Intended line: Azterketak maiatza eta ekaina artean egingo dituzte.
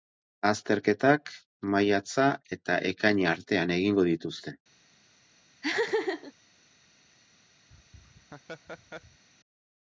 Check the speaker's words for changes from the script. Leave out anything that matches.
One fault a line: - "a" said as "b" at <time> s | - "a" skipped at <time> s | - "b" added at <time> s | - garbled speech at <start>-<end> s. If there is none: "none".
none